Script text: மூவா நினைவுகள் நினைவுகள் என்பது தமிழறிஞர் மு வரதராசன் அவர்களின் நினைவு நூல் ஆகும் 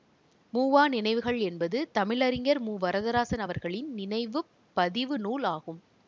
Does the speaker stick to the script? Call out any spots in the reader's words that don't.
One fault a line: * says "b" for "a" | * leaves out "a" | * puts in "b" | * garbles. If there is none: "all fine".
* leaves out "நினைவுகள்"
* puts in "பதிவு"